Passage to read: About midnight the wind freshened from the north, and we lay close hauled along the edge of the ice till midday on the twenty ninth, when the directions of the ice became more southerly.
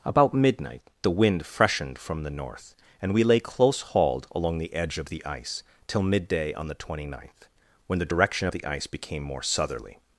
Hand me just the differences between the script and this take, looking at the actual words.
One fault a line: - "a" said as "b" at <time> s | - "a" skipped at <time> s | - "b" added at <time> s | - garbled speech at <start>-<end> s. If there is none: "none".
- "directions" said as "direction" at 8.1 s